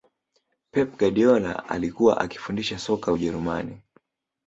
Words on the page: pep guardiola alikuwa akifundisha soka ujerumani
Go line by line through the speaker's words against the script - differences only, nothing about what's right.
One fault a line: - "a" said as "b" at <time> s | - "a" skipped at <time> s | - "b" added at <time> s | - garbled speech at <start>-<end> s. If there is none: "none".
none